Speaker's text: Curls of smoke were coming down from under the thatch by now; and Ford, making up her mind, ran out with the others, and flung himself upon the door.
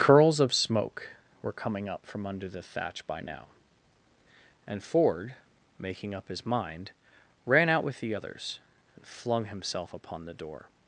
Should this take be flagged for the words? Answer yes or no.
yes